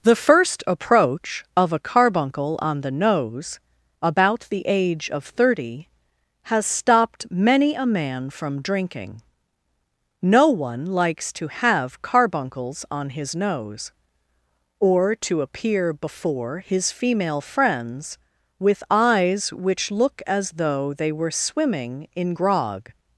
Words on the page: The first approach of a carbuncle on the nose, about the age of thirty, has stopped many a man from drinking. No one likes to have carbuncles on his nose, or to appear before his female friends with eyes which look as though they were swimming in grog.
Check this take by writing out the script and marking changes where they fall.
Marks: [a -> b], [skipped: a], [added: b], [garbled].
The first approach of a carbuncle on the nose, about the age of thirty, has stopped many a man from drinking. No one likes to have carbuncles on his nose, or to appear before his female friends with eyes which look as though they were swimming in grog.